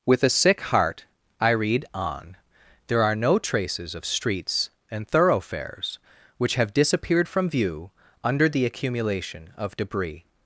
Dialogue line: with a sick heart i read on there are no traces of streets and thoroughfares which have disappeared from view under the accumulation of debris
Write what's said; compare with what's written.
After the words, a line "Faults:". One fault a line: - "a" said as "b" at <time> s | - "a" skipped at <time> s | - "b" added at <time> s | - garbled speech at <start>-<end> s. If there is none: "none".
with a sick heart i read on there are no traces of streets and thoroughfares which have disappeared from view under the accumulation of debris
Faults:
none